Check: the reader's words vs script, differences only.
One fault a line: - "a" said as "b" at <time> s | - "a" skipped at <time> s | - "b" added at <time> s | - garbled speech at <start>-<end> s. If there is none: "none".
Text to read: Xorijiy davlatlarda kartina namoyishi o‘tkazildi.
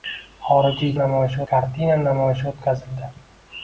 - "davlatlarda" said as "namoyishi" at 1.0 s